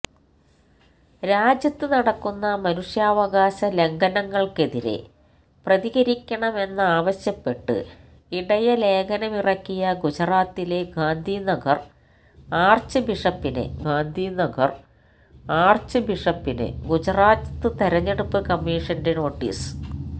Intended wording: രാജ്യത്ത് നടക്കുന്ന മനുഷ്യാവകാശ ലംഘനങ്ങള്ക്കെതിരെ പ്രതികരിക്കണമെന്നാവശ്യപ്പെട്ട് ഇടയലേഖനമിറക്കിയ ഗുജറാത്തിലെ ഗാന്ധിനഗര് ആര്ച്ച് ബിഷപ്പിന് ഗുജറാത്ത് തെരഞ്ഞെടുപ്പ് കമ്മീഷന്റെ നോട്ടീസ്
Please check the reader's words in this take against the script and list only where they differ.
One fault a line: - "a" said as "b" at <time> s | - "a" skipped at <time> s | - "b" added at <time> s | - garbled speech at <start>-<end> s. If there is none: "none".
- "ഗാന്ധിനഗര് ആര്ച്ച് ബിഷപ്പിന്" added at 13.8 s